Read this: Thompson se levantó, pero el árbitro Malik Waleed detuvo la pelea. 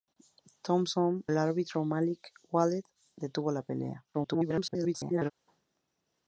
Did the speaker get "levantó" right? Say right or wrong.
wrong